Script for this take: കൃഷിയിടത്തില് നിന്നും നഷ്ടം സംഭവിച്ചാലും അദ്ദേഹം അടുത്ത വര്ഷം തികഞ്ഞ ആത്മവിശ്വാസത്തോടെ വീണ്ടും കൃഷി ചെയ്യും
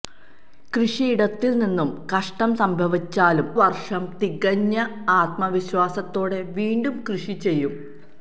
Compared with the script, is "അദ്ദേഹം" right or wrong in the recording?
wrong